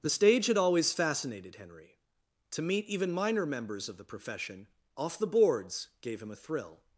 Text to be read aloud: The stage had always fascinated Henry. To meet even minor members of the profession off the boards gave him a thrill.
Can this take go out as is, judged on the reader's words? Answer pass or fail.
pass